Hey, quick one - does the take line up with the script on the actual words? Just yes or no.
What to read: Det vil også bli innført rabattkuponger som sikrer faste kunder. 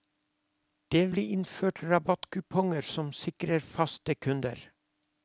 no